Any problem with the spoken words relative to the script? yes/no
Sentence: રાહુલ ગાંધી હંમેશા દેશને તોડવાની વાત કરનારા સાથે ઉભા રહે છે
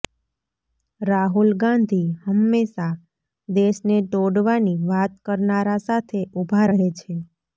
no